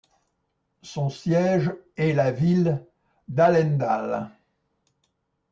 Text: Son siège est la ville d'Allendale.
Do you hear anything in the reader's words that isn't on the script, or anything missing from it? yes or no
no